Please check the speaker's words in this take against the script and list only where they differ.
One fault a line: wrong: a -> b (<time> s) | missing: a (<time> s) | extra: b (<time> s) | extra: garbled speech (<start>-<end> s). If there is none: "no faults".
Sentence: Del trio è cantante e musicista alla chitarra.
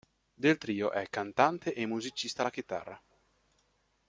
no faults